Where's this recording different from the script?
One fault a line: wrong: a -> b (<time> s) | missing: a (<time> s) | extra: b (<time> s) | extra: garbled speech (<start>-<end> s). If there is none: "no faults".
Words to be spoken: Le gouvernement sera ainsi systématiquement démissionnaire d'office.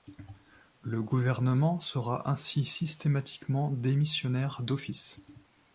no faults